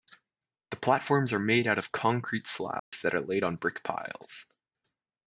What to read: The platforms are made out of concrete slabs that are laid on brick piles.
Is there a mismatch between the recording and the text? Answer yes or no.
no